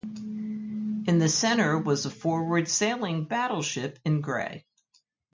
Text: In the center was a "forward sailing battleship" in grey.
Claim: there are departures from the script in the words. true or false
false